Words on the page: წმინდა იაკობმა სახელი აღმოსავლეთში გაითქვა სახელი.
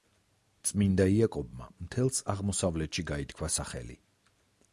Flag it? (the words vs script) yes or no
yes